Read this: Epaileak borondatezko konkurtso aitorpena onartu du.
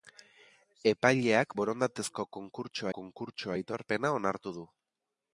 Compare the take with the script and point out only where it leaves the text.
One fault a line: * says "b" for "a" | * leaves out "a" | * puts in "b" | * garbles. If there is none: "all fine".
* puts in "konkurtso"